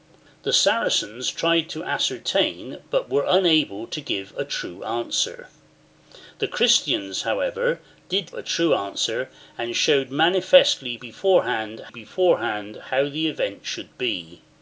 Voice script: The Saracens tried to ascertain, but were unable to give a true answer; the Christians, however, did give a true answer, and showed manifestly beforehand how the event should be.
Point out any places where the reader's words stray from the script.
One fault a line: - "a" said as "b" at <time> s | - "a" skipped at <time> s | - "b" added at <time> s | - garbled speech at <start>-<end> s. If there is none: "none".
- "give" skipped at 8.3 s
- "beforehand" added at 11.9 s